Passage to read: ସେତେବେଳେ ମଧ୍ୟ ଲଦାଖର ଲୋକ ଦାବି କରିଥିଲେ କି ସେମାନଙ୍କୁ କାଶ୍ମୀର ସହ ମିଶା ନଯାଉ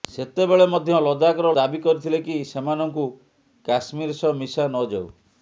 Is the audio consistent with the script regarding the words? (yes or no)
no